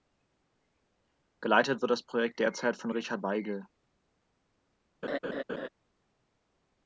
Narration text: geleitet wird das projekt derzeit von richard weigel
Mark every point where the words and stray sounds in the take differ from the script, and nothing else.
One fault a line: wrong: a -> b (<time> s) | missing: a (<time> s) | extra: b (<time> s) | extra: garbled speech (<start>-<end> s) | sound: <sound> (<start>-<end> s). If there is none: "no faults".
sound: laugh (5.0-5.7 s)